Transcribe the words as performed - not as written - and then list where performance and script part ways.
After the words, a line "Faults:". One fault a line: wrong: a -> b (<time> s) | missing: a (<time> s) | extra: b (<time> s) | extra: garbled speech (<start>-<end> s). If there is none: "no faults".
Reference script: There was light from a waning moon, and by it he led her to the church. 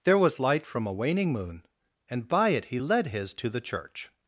There was light from a waning moon, and by it he led his to the church.
Faults:
wrong: her -> his (3.1 s)